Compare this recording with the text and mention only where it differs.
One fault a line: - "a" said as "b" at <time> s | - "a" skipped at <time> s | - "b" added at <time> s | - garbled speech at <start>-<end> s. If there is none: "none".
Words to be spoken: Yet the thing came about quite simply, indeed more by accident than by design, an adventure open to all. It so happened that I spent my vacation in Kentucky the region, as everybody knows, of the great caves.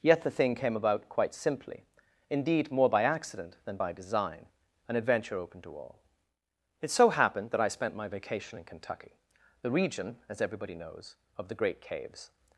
none